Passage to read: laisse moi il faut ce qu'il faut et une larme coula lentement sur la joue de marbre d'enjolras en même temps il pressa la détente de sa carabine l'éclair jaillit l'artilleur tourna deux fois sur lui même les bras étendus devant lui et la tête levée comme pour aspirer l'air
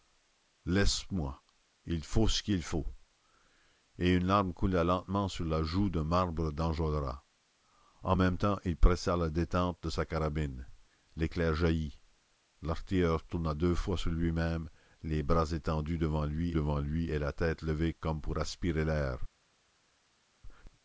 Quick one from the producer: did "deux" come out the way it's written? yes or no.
yes